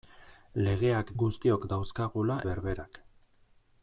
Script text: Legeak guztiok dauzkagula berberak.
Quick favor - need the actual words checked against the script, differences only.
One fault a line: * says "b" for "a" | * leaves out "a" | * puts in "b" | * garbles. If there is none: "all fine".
all fine